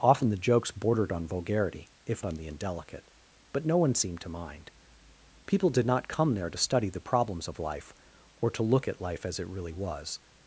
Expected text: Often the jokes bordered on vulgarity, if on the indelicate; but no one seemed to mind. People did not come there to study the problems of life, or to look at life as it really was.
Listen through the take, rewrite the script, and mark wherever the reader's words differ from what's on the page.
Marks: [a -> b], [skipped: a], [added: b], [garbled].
Often the jokes bordered on vulgarity, if on the indelicate; but no one seemed to mind. People did not come there to study the problems of life, or to look at life as it really was.